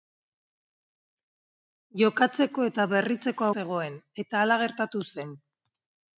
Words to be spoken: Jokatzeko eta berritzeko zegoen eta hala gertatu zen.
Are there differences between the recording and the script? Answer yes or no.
no